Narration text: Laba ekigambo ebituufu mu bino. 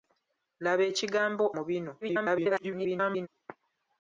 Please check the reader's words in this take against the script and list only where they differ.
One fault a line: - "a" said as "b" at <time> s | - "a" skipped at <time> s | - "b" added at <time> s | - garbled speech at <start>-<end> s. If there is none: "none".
- "ebituufu" skipped at 1.4 s
- garbled speech at 2.0-3.3 s